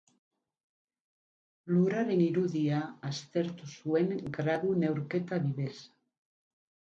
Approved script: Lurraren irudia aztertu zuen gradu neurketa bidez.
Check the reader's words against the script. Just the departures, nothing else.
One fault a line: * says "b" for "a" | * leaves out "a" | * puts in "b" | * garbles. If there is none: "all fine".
all fine